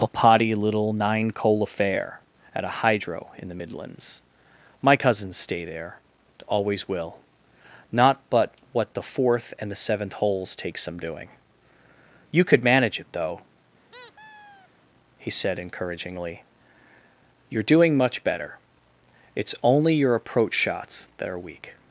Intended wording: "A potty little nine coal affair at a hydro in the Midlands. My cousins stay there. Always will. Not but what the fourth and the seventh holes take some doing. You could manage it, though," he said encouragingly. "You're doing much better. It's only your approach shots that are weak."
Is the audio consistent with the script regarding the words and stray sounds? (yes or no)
no